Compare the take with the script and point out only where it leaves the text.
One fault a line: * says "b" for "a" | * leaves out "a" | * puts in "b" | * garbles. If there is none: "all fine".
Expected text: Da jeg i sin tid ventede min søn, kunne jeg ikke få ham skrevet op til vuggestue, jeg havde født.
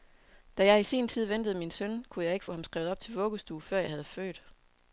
* puts in "før"